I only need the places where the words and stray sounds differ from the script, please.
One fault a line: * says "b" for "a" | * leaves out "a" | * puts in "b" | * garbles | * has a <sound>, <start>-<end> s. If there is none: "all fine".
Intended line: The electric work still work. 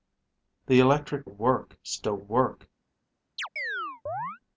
* has a chirp, 3.4-4.4 s